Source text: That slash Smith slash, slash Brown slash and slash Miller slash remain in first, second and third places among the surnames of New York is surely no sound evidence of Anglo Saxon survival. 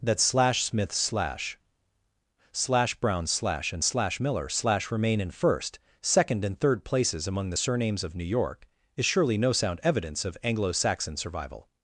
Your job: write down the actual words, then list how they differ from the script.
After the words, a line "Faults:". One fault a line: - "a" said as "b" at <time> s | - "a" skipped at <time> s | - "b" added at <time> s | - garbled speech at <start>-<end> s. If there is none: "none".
That slash Smith slash, slash Brown slash and slash Miller slash remain in first, second and third places among the surnames of New York is surely no sound evidence of Anglo Saxon survival.
Faults:
none